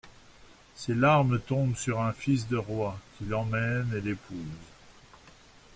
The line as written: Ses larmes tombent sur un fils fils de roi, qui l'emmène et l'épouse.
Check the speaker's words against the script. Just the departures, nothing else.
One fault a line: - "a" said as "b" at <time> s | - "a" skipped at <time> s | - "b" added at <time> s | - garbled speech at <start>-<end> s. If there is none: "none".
- "fils" skipped at 2.5 s